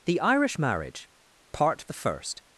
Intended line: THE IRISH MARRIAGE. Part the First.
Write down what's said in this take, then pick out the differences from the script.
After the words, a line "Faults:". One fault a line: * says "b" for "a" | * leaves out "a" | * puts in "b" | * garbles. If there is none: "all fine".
THE IRISH MARRIAGE. Part the First.
Faults:
all fine